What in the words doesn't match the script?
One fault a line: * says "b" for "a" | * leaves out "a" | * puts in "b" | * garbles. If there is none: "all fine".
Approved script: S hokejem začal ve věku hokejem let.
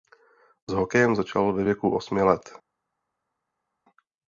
* says "osmi" for "hokejem"